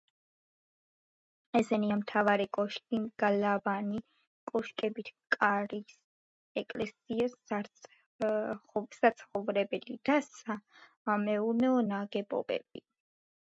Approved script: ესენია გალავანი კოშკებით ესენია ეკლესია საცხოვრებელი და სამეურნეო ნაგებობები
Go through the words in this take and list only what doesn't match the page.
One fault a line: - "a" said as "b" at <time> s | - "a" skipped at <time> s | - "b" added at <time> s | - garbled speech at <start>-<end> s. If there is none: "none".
- "მთავარი კოშკი" added at 2.0 s
- "ესენია" said as "კარის" at 5.3 s